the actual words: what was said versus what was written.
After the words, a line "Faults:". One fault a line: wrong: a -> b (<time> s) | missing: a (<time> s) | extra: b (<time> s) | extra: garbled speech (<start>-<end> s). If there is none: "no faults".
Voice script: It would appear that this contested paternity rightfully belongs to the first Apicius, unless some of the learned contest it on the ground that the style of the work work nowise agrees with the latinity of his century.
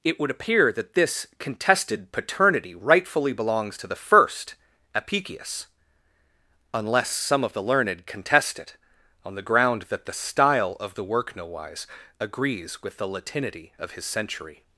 It would appear that this contested paternity rightfully belongs to the first Apicius, unless some of the learned contest it on the ground that the style of the work nowise agrees with the latinity of his century.
Faults:
missing: work (11.3 s)